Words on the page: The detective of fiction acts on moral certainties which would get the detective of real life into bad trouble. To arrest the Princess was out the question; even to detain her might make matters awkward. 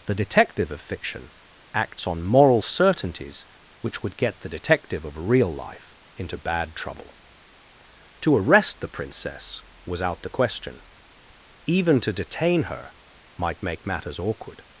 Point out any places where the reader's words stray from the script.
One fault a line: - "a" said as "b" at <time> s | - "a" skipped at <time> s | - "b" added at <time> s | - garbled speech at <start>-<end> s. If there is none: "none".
none